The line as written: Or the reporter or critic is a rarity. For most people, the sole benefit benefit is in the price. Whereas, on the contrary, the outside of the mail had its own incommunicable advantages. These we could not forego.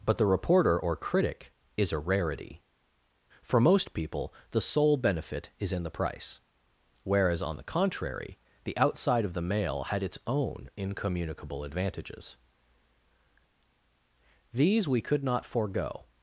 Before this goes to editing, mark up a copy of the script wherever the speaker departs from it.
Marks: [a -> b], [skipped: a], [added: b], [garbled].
[Or -> But] the reporter or critic is a rarity. For most people, the sole benefit [skipped: benefit] is in the price. Whereas, on the contrary, the outside of the mail had its own incommunicable advantages. These we could not forego.